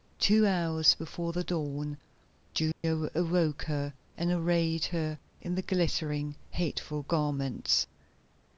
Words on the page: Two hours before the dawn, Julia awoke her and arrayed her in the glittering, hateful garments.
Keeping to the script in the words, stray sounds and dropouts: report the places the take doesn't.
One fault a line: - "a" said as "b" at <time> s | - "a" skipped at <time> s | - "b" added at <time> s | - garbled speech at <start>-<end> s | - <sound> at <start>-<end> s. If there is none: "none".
- dropout at 2.7-2.8 s